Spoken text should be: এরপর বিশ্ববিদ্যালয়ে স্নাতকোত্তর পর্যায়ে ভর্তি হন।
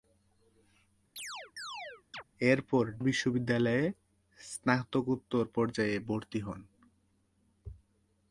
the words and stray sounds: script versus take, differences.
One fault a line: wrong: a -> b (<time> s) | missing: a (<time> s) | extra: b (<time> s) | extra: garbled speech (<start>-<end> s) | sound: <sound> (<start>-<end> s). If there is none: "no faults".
sound: chirp (1.2-2.2 s)